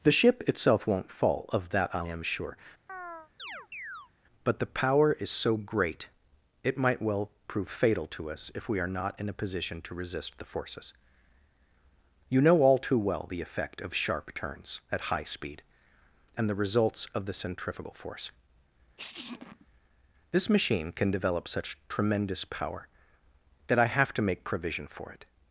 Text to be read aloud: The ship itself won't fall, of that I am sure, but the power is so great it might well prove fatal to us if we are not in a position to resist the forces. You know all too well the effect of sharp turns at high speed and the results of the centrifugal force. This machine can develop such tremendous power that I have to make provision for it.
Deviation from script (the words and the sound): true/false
true